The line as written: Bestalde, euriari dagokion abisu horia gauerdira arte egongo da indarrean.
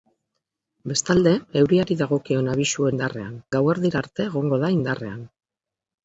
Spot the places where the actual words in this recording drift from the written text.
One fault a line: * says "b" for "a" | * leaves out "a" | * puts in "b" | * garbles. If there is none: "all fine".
* says "indarrean" for "horia"